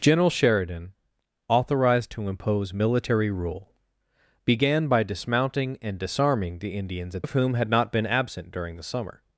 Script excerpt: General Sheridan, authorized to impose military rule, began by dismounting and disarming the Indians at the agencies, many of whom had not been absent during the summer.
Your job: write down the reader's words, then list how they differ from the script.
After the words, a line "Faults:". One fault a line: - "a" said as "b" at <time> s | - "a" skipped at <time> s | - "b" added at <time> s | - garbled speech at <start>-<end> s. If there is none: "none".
General Sheridan, authorized to impose military rule, began by dismounting and disarming the Indians at of whom had not been absent during the summer.
Faults:
- "the agencies many" skipped at 7.2 s